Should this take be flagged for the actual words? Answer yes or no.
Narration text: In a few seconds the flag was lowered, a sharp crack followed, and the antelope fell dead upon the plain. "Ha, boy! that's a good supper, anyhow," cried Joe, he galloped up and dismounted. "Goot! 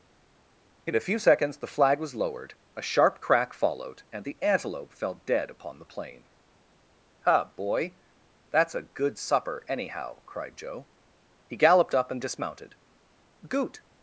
no